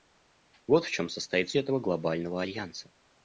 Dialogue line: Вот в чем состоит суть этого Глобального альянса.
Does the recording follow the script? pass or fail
fail